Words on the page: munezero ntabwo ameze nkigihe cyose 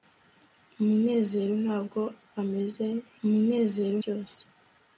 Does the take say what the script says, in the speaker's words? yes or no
no